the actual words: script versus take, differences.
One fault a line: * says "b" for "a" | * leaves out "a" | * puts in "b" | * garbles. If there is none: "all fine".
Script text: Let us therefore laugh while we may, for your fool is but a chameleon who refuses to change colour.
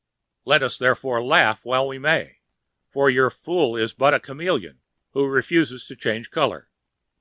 all fine